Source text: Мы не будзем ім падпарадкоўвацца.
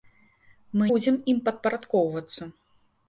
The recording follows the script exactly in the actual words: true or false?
false